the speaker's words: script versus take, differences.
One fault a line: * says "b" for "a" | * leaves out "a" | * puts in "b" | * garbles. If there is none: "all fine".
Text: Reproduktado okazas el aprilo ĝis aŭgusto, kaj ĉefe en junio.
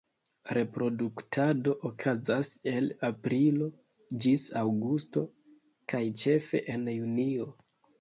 all fine